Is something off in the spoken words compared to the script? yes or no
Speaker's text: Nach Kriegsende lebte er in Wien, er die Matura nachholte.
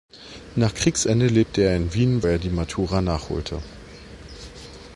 no